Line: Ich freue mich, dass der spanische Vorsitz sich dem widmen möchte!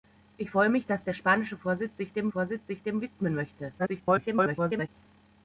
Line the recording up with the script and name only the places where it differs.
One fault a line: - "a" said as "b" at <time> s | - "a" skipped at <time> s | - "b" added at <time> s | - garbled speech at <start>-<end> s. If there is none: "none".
- "Vorsitz sich dem" added at 2.3 s
- garbled speech at 3.8-4.9 s